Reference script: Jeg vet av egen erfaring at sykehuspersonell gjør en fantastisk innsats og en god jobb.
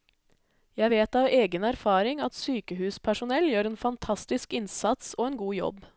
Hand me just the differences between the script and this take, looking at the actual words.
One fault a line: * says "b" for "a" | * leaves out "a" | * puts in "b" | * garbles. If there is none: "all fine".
all fine